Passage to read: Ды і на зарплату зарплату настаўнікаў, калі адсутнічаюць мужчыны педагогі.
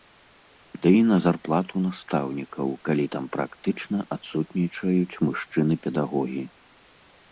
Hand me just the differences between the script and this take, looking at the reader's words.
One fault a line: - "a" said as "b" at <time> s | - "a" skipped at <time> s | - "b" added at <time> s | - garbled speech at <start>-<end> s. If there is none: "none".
- "зарплату" skipped at 1.8 s
- "там практычна" added at 3.1 s